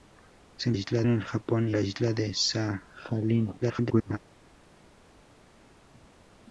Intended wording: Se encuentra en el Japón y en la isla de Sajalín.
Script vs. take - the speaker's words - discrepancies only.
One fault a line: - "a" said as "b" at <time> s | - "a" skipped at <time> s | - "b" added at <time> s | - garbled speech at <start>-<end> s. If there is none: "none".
- "encuentra" said as "isla" at 0.7 s
- "en" skipped at 1.8 s
- garbled speech at 3.6-4.2 s